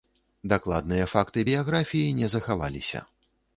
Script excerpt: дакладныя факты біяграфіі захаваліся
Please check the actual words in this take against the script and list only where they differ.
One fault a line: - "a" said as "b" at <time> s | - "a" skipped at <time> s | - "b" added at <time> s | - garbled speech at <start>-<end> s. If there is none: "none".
- "не" added at 2.2 s